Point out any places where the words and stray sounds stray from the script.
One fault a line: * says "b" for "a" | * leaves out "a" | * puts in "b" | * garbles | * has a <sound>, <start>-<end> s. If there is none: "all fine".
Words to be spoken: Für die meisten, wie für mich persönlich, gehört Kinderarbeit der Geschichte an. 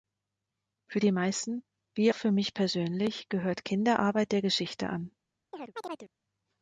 * has a chirp, 5.5-6.1 s